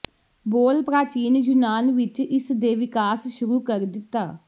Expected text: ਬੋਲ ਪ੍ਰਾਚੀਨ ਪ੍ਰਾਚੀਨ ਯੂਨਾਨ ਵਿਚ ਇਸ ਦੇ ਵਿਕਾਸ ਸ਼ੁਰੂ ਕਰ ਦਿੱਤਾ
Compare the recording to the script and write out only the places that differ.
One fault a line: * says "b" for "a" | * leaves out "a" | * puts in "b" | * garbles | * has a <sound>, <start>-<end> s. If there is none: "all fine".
* leaves out "ਪ੍ਰਾਚੀਨ"